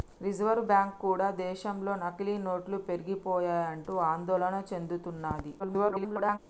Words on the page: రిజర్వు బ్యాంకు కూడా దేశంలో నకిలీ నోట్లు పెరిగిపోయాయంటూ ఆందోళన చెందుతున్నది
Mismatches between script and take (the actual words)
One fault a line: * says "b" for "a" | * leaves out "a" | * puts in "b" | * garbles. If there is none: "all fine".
* garbles